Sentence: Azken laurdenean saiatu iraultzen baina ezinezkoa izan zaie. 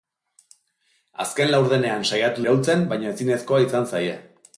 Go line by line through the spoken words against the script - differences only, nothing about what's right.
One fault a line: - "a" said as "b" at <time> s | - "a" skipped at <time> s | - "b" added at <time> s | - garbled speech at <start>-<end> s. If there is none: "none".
none